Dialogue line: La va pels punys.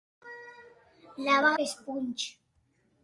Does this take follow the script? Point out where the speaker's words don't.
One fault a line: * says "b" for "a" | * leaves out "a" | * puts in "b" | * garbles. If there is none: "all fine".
all fine